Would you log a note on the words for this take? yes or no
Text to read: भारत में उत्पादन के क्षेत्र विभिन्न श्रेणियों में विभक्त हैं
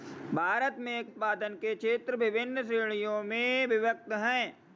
no